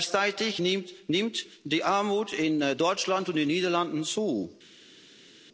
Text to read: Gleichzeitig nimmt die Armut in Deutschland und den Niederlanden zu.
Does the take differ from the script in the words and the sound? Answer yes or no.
no